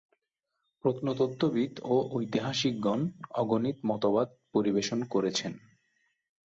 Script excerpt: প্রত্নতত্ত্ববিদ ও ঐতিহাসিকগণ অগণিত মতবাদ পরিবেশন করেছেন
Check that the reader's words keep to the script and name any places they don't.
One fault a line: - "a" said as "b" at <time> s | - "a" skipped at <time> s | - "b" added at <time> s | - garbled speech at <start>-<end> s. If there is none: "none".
none